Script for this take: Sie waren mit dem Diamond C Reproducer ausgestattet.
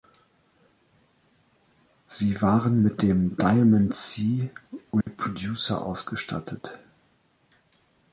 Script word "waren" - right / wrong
right